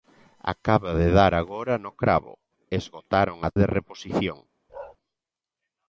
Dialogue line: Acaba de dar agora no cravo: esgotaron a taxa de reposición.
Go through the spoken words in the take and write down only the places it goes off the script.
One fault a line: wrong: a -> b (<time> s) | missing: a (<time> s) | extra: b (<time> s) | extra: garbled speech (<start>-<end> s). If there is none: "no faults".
missing: taxa (3.5 s)